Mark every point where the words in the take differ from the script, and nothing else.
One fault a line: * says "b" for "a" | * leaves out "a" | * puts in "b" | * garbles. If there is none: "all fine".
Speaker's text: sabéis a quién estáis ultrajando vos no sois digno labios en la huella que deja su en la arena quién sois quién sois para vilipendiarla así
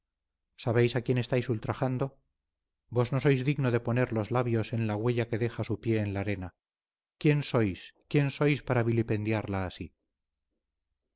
* puts in "de poner los"
* puts in "pie"